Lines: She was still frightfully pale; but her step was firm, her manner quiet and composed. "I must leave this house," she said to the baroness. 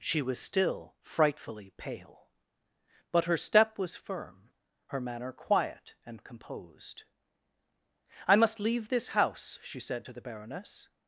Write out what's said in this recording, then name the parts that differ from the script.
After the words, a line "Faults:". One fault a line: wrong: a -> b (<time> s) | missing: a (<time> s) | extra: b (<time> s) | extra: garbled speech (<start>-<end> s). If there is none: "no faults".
She was still frightfully pale; but her step was firm, her manner quiet and composed. "I must leave this house," she said to the baroness.
Faults:
no faults